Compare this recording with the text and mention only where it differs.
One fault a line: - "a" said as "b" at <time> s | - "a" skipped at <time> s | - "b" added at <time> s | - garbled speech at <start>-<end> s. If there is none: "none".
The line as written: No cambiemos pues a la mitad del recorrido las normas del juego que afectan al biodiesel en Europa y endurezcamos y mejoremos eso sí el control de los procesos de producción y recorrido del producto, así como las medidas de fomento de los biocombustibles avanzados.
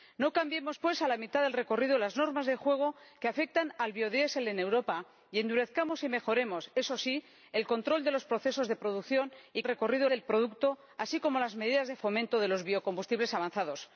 none